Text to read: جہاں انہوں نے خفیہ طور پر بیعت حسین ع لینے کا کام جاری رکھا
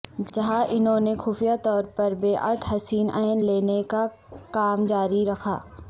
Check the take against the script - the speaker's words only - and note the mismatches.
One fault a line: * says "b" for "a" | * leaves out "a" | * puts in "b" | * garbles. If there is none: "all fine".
all fine